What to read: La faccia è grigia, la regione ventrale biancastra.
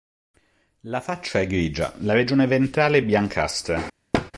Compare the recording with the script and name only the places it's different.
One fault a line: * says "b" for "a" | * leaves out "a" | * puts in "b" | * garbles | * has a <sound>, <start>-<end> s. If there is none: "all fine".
* has a thud, 4.1-4.3 s